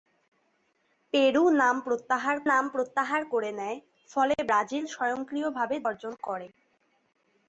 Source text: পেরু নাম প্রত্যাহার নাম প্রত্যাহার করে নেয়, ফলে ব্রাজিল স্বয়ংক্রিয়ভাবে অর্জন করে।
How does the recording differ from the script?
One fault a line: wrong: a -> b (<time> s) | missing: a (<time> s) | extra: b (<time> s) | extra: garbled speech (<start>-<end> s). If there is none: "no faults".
no faults